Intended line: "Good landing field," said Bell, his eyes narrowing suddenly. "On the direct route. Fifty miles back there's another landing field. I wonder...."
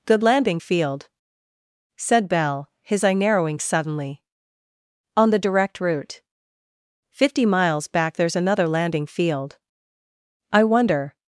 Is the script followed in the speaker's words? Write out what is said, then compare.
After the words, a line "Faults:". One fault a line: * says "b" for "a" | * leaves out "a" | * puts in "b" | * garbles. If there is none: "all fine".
"Good landing field," said Bell, his eye narrowing suddenly. "On the direct route. Fifty miles back there's another landing field. I wonder...."
Faults:
* says "eye" for "eyes"